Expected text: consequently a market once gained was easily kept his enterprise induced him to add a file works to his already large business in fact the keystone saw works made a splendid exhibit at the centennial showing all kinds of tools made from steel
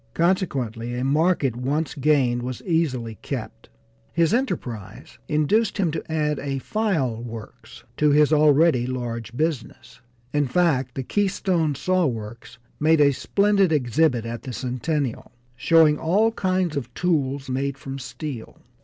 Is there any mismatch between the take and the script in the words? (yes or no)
no